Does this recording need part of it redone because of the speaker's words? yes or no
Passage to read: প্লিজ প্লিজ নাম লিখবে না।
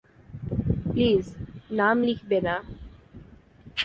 yes